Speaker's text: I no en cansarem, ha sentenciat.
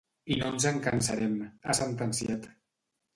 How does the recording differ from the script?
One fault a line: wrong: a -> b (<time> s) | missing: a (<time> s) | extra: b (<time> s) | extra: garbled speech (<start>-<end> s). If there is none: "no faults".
extra: ens (0.5 s)